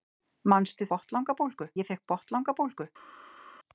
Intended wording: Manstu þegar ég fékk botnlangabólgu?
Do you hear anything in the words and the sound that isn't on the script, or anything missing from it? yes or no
yes